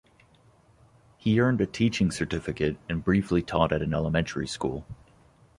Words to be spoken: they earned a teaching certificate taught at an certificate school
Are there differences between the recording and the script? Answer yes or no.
yes